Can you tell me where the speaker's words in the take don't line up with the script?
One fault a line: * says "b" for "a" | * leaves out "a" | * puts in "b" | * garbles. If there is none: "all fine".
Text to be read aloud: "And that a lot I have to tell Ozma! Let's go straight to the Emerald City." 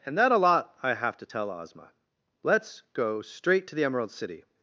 all fine